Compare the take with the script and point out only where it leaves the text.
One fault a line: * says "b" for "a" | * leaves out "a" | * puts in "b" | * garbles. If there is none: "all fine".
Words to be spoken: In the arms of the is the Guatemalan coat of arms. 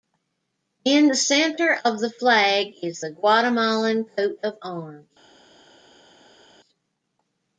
* says "center" for "arms"
* puts in "flag"